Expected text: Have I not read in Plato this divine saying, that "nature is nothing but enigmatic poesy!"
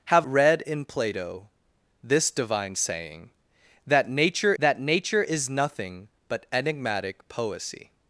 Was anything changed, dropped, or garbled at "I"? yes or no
yes